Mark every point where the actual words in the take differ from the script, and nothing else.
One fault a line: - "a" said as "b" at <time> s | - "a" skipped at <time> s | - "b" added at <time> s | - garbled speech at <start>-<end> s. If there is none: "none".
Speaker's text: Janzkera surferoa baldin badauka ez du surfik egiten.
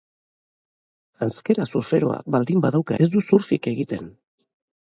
none